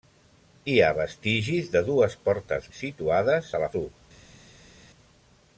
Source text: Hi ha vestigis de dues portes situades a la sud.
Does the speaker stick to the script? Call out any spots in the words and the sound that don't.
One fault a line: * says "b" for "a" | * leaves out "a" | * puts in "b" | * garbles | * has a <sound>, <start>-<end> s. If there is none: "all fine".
all fine